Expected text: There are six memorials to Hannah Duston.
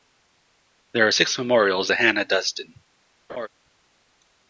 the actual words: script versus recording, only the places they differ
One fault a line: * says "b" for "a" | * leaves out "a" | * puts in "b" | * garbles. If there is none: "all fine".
all fine